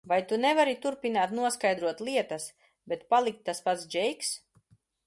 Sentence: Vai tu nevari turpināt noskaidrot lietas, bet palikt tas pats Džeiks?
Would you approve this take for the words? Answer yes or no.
yes